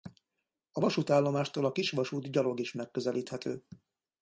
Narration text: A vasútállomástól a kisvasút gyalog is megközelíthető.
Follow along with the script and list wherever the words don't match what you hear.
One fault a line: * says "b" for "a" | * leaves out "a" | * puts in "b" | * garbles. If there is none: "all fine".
all fine